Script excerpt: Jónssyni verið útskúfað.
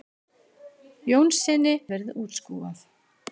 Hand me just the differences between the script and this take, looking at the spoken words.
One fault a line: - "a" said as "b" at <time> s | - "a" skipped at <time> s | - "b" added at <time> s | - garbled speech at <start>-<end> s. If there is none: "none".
none